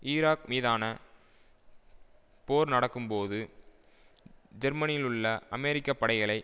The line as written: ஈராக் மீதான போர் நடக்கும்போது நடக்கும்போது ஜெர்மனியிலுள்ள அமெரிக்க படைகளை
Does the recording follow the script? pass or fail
fail